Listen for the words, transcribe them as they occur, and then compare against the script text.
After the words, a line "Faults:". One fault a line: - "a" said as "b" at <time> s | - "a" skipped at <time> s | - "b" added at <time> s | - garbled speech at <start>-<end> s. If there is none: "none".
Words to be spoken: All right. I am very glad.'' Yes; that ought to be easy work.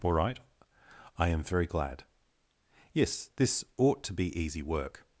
All right. I am very glad.'' Yes; this ought to be easy work.
Faults:
- "that" said as "this" at 3.4 s